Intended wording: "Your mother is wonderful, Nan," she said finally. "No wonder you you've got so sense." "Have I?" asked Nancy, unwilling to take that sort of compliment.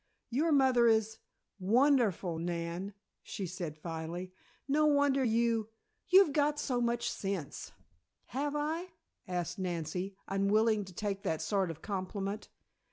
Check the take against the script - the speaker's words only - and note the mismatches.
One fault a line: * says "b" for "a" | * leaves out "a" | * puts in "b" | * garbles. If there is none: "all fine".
* puts in "much"